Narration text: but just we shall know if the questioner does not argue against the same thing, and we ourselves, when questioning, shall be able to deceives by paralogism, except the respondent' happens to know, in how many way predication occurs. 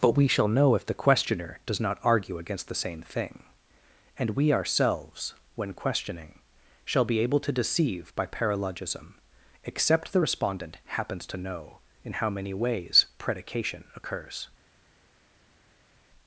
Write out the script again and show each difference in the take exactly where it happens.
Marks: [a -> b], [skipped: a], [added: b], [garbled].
but [skipped: just] we shall know if the questioner does not argue against the same thing, and we ourselves, when questioning, shall be able to [deceives -> deceive] by paralogism, except the respondent' happens to know, in how many [way -> ways] predication occurs.